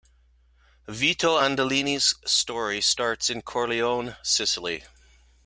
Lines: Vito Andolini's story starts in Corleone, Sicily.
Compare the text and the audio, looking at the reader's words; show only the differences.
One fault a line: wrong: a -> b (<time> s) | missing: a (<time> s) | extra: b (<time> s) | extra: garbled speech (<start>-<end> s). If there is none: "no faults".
no faults